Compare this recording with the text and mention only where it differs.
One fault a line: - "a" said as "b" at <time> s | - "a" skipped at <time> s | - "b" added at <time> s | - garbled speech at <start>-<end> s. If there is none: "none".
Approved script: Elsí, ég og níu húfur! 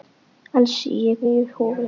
none